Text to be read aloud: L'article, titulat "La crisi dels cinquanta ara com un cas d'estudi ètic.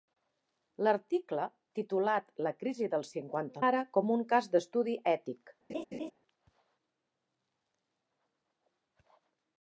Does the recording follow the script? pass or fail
pass